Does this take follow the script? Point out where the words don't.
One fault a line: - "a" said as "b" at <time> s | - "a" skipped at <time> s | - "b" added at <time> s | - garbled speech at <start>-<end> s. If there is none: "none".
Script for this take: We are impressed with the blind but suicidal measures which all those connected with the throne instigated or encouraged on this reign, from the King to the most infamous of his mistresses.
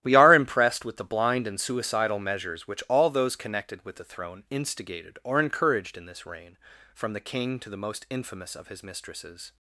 - "but" said as "and" at 1.4 s
- "on" said as "in" at 6.0 s